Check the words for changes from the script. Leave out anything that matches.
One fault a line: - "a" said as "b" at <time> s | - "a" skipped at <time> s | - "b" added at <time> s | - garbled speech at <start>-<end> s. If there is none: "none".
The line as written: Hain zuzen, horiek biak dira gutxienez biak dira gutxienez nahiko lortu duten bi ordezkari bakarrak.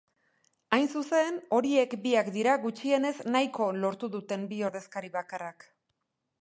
- "biak dira gutxienez" skipped at 3.1 s